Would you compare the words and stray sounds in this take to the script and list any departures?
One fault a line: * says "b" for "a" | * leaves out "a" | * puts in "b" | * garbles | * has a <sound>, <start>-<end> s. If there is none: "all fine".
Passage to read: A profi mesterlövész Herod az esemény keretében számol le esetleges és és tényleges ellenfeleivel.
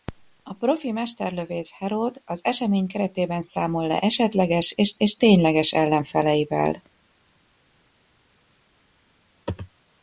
all fine